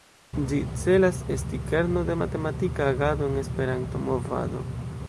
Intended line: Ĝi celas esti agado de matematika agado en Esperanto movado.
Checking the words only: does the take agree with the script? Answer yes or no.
no